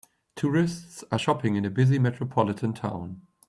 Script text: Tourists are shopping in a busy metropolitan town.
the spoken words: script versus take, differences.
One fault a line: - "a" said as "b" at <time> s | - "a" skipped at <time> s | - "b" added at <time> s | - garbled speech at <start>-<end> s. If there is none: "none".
none